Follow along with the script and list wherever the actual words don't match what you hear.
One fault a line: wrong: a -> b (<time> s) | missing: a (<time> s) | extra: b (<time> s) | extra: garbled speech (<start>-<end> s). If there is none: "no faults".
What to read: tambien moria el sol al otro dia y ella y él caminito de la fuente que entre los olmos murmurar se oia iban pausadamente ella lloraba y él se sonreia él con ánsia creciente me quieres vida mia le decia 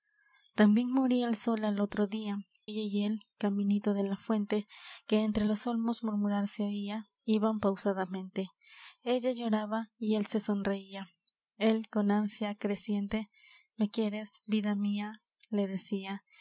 missing: y (2.4 s)